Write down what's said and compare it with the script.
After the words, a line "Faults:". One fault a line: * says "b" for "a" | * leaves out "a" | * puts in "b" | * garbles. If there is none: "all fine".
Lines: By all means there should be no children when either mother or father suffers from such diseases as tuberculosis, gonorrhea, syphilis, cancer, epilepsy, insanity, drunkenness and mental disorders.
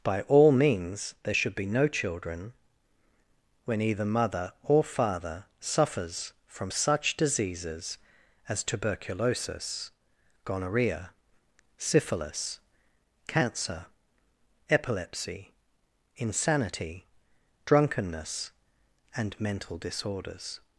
By all means there should be no children when either mother or father suffers from such diseases as tuberculosis, gonorrhea, syphilis, cancer, epilepsy, insanity, drunkenness and mental disorders.
Faults:
all fine